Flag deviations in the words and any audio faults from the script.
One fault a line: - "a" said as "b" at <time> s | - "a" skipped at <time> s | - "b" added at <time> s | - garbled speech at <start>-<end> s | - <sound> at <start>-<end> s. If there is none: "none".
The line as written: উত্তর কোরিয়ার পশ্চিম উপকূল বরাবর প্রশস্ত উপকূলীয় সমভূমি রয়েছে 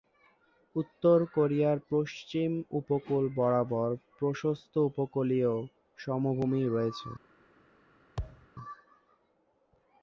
- thud at 8.2-8.5 s